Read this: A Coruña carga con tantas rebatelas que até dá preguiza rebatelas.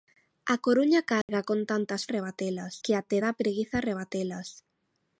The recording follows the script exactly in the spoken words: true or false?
true